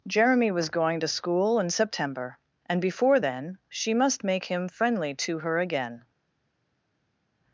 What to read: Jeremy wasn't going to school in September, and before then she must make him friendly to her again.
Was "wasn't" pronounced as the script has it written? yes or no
no